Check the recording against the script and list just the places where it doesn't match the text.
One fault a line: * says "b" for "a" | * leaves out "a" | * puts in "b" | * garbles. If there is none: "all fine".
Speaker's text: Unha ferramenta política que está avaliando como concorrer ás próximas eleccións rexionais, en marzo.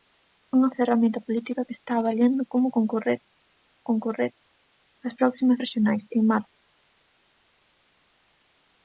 * puts in "concorrer"
* leaves out "eleccións"